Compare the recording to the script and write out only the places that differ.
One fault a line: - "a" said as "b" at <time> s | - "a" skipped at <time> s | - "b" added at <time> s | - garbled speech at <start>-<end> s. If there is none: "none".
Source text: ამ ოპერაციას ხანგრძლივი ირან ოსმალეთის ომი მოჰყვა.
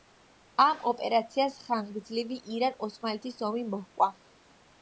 none